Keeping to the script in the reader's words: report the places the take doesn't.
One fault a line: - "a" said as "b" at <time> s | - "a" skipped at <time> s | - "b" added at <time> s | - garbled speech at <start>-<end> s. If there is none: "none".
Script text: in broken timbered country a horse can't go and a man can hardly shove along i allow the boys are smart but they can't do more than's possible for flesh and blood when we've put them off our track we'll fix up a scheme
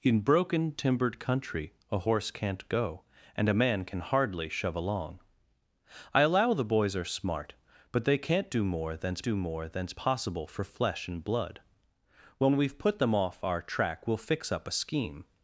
- "do more than's" added at 9.2 s